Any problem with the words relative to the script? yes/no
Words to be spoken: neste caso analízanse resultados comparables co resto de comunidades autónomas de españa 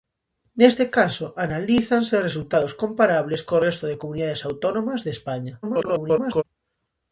yes